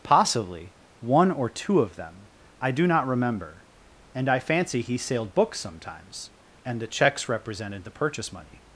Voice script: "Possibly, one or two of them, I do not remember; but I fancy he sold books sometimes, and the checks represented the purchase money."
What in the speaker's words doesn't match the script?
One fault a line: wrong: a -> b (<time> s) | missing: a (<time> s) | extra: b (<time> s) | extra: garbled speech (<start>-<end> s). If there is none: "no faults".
wrong: but -> and (4.1 s)
wrong: sold -> sailed (5.0 s)